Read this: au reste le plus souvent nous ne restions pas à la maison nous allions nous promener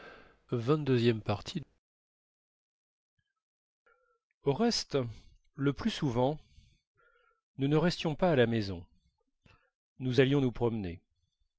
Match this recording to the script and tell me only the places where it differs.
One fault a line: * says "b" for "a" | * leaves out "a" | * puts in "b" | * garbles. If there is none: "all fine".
all fine